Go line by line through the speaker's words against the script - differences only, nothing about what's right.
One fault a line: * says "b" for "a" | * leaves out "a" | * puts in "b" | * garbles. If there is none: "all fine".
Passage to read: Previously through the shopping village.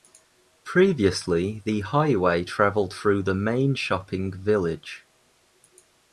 * puts in "the highway travelled"
* puts in "main"